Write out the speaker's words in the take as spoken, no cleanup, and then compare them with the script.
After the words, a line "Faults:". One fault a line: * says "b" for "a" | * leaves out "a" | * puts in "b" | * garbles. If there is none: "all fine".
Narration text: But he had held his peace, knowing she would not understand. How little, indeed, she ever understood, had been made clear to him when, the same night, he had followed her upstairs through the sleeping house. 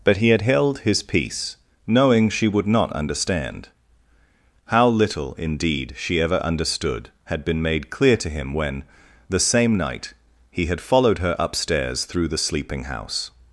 But he had held his peace, knowing she would not understand. How little, indeed, she ever understood, had been made clear to him when, the same night, he had followed her upstairs through the sleeping house.
Faults:
all fine